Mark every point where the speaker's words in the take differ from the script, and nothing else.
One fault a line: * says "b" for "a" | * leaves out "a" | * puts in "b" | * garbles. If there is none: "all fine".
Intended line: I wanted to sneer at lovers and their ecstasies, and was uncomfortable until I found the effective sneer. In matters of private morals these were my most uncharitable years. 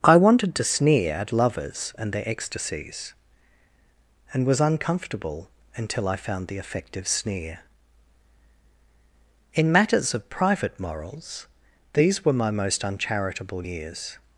all fine